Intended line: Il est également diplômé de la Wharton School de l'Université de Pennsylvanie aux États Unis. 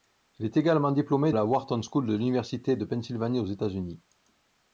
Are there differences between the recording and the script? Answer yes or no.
yes